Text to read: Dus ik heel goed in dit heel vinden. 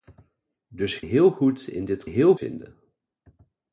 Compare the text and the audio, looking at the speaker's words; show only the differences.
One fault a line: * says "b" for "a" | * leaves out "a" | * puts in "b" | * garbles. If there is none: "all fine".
all fine